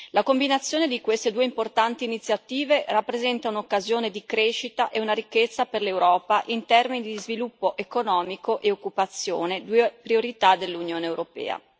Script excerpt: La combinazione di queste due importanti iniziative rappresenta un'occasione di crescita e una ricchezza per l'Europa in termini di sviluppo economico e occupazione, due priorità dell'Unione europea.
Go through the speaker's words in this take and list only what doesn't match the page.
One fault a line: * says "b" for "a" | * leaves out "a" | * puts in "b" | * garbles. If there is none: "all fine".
all fine